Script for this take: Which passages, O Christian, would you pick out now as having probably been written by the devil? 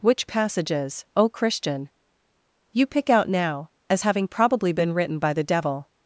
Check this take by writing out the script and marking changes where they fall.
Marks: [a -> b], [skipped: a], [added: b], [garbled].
Which passages, O Christian, [skipped: would] you pick out now as having probably been written by the devil?